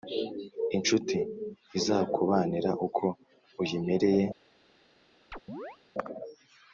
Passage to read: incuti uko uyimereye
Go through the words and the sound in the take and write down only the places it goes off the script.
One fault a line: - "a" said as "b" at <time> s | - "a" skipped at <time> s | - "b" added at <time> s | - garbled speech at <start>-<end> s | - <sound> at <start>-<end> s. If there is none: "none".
- "izakubanira" added at 1.8 s
- chirp at 5.3-5.8 s